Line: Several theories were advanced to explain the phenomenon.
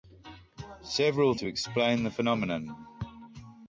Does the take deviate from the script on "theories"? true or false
true